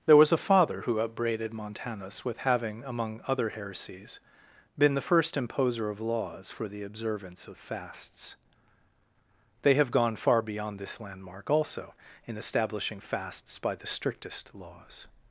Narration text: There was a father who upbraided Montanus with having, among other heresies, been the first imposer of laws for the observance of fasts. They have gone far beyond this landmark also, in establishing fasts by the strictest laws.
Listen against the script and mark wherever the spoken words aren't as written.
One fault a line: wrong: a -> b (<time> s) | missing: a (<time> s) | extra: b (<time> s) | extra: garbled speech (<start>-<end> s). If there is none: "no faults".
no faults